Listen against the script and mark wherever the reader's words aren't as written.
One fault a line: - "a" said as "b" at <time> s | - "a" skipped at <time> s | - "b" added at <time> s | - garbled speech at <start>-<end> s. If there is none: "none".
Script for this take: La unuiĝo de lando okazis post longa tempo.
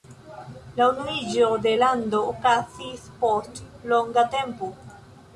none